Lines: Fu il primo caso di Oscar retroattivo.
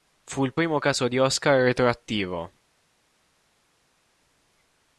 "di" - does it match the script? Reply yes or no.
yes